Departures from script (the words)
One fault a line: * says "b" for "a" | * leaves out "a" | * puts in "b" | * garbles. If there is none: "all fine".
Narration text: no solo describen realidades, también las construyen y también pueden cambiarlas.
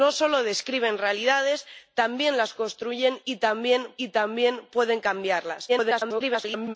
* puts in "y también"
* garbles